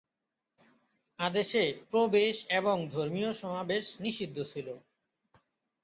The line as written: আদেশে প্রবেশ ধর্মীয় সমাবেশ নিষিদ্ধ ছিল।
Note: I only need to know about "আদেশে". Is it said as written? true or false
true